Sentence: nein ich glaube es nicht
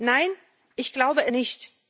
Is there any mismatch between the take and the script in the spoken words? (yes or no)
yes